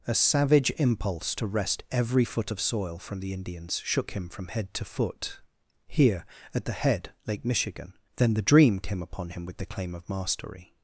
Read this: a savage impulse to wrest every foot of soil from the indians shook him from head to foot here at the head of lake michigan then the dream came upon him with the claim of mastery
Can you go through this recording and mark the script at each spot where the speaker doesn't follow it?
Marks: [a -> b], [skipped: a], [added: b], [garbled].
a savage impulse to wrest every foot of soil from the indians shook him from head to foot here at the head [skipped: of] lake michigan then the dream came upon him with the claim of mastery